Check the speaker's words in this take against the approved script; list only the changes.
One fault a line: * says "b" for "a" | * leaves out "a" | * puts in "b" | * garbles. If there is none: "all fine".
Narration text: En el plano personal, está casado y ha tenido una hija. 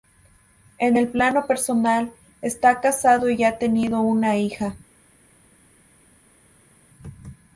all fine